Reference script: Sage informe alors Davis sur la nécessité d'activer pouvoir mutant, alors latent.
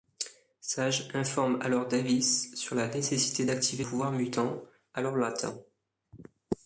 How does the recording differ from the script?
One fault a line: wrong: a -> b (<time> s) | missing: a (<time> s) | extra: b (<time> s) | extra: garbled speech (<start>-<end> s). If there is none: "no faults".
no faults